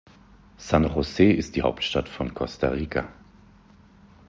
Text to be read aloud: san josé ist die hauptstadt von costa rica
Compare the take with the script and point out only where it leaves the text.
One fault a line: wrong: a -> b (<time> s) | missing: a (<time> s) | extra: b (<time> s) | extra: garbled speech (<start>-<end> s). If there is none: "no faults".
no faults